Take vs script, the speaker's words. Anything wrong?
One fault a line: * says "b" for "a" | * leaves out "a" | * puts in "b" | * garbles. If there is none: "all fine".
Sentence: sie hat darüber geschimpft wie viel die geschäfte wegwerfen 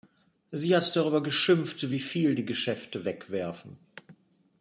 all fine